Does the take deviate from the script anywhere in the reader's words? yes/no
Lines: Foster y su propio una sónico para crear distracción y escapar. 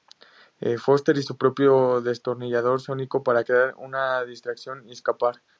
yes